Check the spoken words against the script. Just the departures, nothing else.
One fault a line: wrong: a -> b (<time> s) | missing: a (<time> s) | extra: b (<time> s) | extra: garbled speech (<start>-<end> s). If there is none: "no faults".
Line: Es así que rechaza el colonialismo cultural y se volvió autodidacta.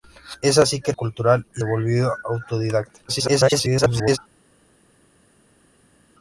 missing: rechaza el colonialismo (0.9 s)
missing: se (1.6 s)
extra: garbled speech (3.1-4.2 s)